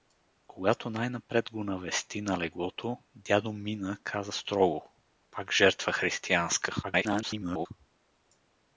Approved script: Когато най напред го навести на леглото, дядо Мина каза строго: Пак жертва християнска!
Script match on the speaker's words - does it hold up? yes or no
no